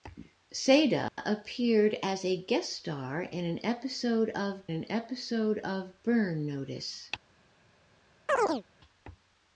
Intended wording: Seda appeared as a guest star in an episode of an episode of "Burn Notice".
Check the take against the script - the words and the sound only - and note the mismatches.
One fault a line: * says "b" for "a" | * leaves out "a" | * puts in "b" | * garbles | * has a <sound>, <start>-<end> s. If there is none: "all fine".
* has a dropout, 1.1-1.2 s
* has a chirp, 8.3-8.6 s